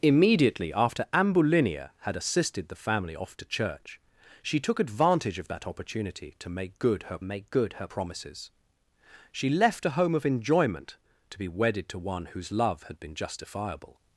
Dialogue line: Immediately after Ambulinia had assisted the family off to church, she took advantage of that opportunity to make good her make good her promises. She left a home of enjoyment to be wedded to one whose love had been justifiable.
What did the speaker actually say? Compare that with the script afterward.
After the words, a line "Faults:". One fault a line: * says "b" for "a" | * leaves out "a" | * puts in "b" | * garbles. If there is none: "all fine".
Immediately after Ambulinia had assisted the family off to church, she took advantage of that opportunity to make good her make good her promises. She left a home of enjoyment to be wedded to one whose love had been justifiable.
Faults:
all fine